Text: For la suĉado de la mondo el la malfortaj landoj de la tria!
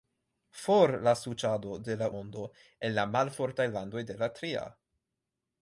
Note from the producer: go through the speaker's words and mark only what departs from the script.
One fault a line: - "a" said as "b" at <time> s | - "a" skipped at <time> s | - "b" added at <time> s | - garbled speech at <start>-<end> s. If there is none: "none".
none